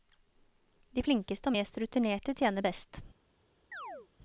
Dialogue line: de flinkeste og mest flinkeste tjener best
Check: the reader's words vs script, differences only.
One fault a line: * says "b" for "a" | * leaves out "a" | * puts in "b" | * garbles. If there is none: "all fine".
* says "rutinerte" for "flinkeste"